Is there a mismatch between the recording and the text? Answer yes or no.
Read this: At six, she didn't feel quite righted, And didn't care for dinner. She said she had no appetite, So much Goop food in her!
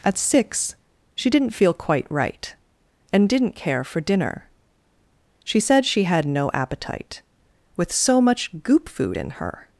yes